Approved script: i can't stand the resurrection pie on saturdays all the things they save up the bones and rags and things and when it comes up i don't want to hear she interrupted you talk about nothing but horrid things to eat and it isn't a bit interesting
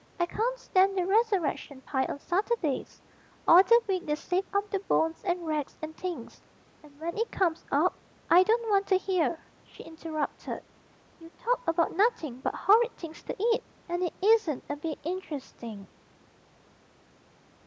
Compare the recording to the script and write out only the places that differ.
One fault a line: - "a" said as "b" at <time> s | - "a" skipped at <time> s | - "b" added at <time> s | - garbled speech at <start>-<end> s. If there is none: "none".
- "things" said as "week" at 3.9 s